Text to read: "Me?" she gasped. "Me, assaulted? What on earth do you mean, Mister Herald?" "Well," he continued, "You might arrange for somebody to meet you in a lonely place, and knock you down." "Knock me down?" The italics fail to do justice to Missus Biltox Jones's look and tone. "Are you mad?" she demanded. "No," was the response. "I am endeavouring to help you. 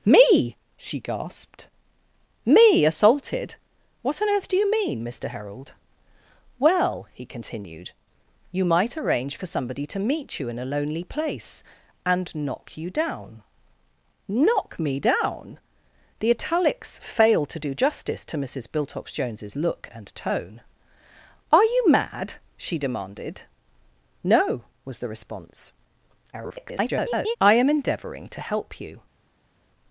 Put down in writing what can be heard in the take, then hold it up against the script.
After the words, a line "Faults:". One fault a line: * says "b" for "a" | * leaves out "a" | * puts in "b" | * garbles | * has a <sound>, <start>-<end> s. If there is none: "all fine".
"Me?" she gasped. "Me, assaulted? What on earth do you mean, Mister Herald?" "Well," he continued, "You might arrange for somebody to meet you in a lonely place, and knock you down." "Knock me down?" The italics fail to do justice to Missus Biltox Jones's look and tone. "Are you mad?" she demanded. "No," was the response. [garbled] "I am endeavouring to help you.
Faults:
* garbles